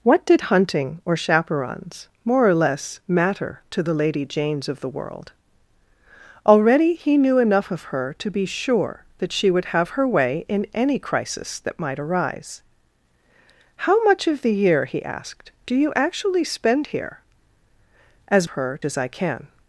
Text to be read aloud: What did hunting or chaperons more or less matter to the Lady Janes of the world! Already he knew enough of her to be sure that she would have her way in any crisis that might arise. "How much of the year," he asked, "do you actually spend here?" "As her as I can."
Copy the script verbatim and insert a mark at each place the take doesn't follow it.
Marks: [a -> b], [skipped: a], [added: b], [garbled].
What did hunting or chaperons more or less matter to the Lady Janes of the world! Already he knew enough of her to be sure that she would have her way in any crisis that might arise. "How much of the year," he asked, "do you actually spend here?" "As her as I can."